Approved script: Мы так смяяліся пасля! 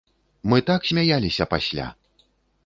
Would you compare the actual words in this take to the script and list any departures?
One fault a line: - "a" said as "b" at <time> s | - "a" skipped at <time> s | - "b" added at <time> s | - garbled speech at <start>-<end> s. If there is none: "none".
none